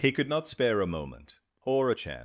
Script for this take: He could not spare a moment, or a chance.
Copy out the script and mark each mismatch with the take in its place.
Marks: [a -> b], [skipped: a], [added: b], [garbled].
He could not spare a moment, or a chance.